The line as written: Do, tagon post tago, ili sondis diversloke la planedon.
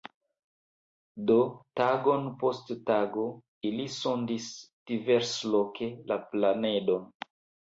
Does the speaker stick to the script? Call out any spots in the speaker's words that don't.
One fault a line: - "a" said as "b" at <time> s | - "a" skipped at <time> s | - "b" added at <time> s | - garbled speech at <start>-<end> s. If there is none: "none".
none